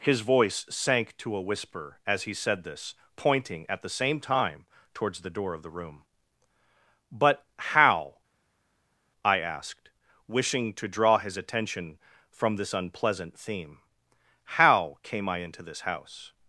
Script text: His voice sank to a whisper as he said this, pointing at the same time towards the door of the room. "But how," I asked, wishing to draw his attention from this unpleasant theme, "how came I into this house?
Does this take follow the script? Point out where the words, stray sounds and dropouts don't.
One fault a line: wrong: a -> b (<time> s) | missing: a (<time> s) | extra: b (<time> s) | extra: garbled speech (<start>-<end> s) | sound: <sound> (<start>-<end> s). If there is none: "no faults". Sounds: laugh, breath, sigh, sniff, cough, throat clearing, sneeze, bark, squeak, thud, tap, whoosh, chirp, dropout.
no faults